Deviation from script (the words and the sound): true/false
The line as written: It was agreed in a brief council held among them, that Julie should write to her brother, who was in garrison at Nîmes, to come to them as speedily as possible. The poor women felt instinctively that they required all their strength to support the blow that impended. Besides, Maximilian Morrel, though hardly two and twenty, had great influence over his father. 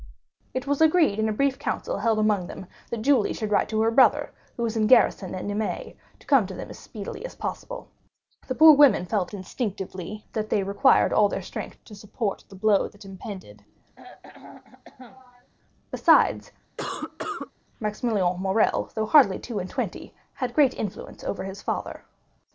true